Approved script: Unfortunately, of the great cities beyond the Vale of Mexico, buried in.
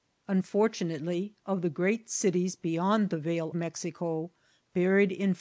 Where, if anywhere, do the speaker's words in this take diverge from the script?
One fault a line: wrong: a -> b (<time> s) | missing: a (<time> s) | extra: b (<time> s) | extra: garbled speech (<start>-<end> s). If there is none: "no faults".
missing: of (3.5 s)